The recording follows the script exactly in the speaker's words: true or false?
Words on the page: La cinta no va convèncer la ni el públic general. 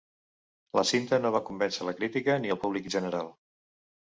false